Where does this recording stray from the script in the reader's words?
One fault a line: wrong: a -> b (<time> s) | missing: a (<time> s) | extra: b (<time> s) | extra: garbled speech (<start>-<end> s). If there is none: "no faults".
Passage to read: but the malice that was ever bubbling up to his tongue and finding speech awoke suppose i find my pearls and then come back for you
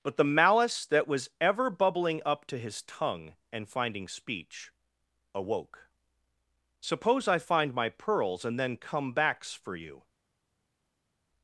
wrong: back -> backs (9.1 s)